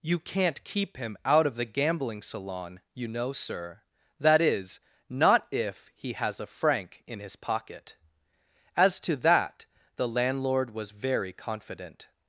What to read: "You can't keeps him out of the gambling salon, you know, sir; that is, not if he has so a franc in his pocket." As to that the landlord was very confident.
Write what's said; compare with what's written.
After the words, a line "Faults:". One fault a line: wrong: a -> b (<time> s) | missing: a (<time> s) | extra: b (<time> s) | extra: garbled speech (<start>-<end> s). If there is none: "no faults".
"You can't keep him out of the gambling salon, you know, sir; that is, not if he has a franc in his pocket." As to that the landlord was very confident.
Faults:
wrong: keeps -> keep (0.6 s)
missing: so (6.4 s)